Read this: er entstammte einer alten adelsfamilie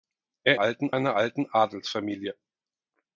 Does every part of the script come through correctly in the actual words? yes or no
no